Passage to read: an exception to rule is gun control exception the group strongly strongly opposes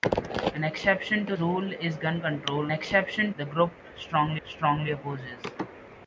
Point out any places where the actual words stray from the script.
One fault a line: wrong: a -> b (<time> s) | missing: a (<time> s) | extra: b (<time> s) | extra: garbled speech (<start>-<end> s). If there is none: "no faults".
no faults